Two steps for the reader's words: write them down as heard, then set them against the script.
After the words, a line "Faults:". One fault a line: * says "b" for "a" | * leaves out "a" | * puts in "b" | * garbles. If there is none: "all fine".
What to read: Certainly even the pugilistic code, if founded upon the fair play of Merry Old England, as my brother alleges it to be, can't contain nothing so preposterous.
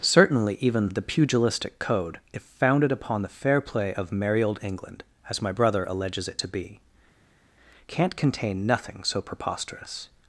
Certainly even the pugilistic code, if founded upon the fair play of Merry Old England, as my brother alleges it to be, can't contain nothing so preposterous.
Faults:
all fine